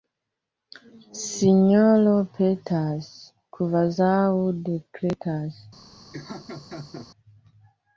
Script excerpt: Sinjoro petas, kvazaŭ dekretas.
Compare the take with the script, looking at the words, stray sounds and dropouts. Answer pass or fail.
fail